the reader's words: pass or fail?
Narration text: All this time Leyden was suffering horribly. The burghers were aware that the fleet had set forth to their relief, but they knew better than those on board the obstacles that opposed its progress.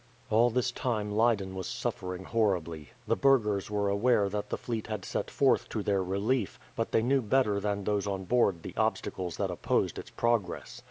pass